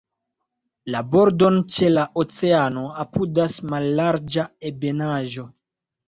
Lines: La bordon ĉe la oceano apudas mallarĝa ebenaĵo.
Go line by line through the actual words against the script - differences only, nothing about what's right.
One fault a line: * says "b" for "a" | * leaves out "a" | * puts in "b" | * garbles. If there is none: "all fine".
all fine